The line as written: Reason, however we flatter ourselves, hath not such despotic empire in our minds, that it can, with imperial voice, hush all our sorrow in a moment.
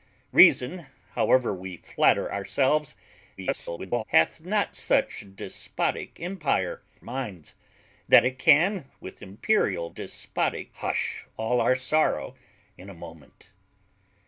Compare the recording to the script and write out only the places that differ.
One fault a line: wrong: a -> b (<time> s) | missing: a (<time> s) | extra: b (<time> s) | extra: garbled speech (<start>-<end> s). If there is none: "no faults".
extra: garbled speech (3.4-4.0 s)
missing: in our (6.8 s)
wrong: voice -> despotic (9.9 s)